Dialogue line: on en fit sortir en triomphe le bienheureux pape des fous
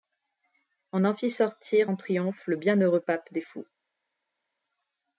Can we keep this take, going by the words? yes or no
yes